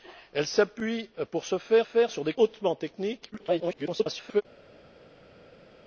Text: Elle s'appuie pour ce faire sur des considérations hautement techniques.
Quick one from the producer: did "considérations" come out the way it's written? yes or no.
no